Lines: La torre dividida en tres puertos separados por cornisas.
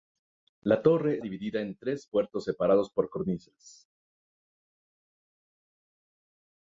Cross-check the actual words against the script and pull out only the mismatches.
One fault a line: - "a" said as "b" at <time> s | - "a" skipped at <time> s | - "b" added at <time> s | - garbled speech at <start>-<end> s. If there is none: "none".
none